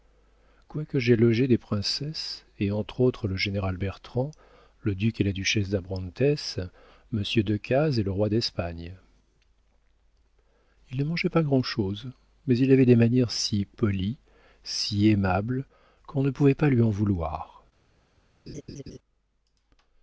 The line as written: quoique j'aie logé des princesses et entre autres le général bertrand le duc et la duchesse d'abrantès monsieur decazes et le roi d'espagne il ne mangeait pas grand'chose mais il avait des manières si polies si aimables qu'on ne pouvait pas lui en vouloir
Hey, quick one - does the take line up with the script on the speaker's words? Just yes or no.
yes